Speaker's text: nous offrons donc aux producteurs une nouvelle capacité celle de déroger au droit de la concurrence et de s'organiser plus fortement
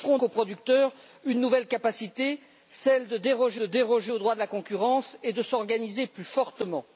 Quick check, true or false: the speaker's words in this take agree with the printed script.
false